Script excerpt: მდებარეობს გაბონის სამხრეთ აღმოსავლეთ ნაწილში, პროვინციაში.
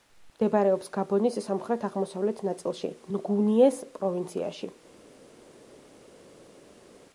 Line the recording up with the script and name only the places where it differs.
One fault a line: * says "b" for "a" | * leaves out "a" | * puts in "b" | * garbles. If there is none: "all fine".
* puts in "ნგუნიეს"